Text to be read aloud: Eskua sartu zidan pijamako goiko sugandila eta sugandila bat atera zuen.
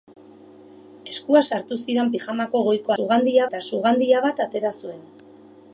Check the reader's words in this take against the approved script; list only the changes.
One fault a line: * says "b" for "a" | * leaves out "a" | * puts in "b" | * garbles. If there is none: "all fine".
all fine